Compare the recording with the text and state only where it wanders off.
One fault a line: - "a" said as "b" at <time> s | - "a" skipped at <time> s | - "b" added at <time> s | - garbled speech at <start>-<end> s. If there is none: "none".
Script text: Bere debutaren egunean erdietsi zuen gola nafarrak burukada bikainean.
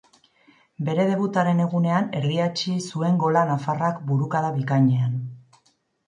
none